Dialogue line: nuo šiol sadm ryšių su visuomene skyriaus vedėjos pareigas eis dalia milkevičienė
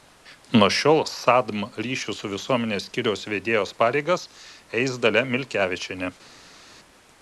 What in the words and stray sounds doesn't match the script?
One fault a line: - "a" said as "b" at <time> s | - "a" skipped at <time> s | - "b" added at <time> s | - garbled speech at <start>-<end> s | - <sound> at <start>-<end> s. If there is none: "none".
none